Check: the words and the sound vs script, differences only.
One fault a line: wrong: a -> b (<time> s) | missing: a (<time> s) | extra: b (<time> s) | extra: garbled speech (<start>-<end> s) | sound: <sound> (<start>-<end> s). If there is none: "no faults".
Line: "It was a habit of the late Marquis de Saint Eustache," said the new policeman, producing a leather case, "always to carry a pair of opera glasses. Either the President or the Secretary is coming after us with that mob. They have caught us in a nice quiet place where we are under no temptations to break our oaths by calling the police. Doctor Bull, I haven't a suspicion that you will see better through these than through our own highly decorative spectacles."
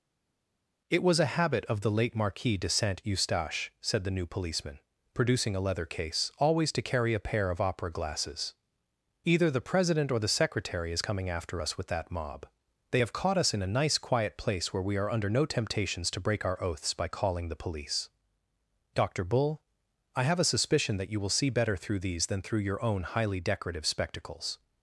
wrong: haven't -> have (20.2 s)
wrong: our -> your (22.6 s)